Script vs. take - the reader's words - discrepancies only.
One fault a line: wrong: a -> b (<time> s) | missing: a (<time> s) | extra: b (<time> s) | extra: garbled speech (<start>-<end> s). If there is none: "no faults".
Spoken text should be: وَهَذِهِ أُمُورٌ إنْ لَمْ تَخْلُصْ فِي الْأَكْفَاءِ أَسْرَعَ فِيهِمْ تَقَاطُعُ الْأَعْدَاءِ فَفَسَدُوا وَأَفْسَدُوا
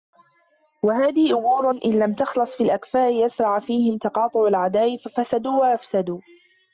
no faults